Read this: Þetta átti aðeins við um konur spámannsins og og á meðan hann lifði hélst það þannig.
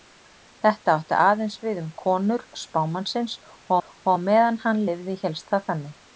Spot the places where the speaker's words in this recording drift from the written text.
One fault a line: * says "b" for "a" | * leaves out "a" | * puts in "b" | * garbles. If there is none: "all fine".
all fine